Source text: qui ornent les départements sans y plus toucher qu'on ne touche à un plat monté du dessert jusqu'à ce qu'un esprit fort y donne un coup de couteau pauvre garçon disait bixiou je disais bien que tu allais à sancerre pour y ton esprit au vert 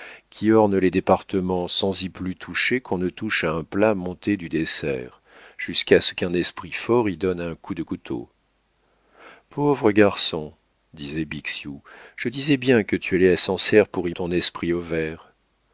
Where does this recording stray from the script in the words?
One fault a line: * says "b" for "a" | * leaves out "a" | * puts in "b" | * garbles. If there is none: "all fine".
all fine